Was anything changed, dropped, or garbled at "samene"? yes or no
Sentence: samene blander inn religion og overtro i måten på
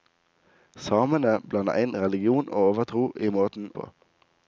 no